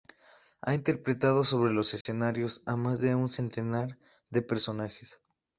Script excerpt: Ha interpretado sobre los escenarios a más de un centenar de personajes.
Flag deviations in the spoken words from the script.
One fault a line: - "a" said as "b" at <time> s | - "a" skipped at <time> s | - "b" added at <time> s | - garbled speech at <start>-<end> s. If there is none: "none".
none